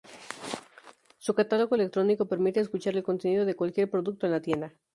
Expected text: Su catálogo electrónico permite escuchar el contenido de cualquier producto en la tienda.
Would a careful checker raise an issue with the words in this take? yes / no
no